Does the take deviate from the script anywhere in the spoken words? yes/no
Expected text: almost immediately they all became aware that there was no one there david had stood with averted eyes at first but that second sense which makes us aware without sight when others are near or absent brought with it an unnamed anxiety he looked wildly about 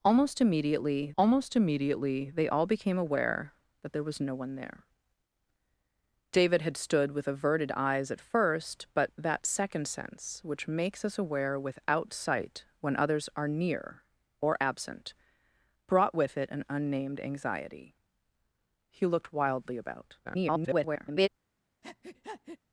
yes